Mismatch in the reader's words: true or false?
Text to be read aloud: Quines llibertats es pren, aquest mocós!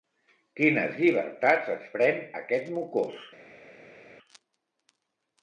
false